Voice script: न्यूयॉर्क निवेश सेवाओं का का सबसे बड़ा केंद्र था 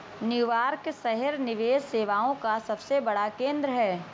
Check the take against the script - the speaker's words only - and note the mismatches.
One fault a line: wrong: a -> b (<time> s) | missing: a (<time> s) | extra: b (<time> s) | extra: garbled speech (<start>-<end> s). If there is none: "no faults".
extra: शहर (0.9 s)
missing: का (2.6 s)
wrong: था -> है (3.7 s)